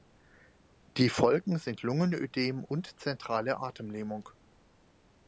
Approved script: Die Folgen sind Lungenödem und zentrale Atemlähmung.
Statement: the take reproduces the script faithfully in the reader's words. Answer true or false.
true